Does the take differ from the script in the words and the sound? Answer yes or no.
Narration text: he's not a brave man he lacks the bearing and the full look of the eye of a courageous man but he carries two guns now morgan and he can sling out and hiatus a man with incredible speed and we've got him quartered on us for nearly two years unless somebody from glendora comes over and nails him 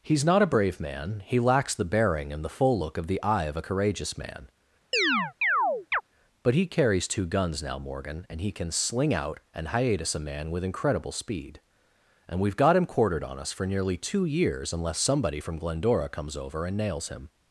yes